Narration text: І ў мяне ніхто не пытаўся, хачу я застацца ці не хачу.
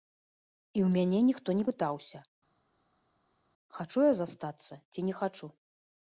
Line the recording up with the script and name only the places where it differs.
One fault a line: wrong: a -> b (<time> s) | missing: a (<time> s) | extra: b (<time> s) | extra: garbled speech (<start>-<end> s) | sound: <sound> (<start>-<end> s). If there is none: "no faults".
no faults